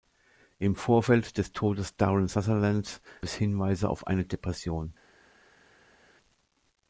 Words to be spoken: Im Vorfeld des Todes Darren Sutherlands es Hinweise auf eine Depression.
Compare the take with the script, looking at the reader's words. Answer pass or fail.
pass